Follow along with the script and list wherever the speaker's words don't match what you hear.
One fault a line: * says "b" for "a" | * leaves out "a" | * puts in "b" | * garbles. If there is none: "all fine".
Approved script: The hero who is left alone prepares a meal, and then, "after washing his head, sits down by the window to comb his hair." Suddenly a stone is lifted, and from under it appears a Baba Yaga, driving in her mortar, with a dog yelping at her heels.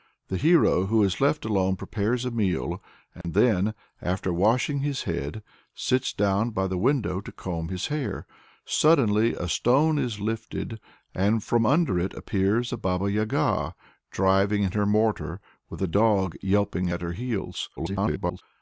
* garbles